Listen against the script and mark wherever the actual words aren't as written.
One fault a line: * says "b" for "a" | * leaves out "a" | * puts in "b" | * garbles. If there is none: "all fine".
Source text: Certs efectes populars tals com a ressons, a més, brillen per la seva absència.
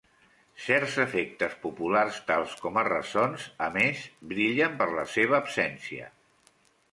all fine